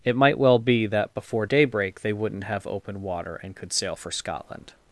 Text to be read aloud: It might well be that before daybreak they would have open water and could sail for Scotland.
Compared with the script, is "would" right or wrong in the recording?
wrong